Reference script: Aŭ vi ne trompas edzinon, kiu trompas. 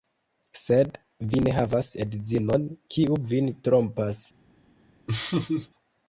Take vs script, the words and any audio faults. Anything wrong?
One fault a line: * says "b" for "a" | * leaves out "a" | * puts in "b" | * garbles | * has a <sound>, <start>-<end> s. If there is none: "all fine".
* says "Sed" for "Aŭ"
* says "havas" for "trompas"
* puts in "vin"
* has a laugh, 5.1-5.7 s